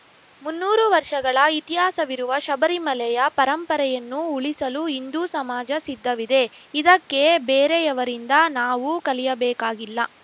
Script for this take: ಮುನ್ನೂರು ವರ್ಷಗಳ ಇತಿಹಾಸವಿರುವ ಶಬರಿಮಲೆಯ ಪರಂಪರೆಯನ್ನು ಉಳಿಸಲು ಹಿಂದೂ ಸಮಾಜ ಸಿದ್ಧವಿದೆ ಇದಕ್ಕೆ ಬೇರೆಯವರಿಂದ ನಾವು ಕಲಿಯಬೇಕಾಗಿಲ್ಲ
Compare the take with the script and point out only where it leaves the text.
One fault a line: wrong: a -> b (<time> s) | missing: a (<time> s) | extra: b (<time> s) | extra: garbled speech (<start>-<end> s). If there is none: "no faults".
no faults